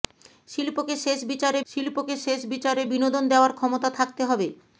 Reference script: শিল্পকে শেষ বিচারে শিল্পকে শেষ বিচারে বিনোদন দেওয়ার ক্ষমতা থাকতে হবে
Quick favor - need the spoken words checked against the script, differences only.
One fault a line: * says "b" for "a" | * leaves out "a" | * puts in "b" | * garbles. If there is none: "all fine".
all fine